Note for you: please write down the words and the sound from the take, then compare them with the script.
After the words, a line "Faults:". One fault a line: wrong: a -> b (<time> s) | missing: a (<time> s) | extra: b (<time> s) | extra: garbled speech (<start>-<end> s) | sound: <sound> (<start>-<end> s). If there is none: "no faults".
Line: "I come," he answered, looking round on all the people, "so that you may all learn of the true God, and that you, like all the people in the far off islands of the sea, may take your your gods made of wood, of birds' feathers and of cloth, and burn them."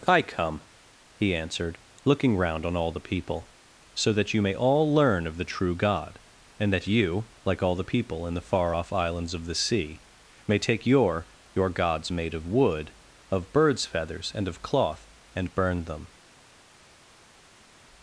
"I come," he answered, looking round on all the people, "so that you may all learn of the true God, and that you, like all the people in the far off islands of the sea, may take your your gods made of wood, of birds' feathers and of cloth, and burn them."
Faults:
no faults